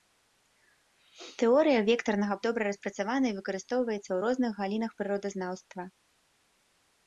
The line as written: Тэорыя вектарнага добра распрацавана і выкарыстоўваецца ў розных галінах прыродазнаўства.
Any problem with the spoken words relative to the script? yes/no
no